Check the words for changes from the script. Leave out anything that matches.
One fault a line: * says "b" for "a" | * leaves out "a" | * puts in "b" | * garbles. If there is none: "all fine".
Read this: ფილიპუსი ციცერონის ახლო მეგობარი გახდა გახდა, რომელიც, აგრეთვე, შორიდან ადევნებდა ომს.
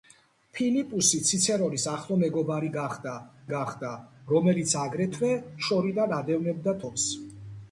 all fine